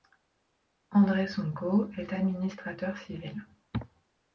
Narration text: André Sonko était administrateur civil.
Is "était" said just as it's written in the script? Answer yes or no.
no